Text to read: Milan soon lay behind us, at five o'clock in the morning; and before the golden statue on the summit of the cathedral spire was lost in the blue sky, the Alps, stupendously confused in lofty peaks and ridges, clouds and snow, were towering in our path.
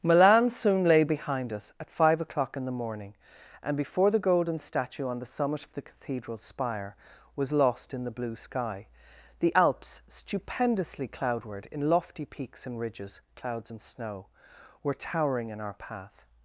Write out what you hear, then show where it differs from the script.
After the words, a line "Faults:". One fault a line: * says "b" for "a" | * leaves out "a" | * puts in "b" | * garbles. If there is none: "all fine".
Milan soon lay behind us, at five o'clock in the morning; and before the golden statue on the summit of the cathedral spire was lost in the blue sky, the Alps, stupendously cloudward in lofty peaks and ridges, clouds and snow, were towering in our path.
Faults:
* says "cloudward" for "confused"